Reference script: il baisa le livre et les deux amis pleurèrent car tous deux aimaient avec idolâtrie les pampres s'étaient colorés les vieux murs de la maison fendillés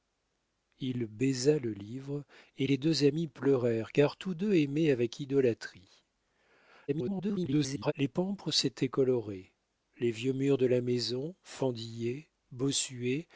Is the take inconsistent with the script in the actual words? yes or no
yes